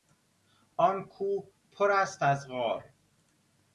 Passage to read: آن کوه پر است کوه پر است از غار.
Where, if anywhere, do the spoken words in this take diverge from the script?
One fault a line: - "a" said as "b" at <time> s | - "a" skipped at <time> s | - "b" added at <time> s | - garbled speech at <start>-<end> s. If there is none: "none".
- "کوه پر است" skipped at 2.2 s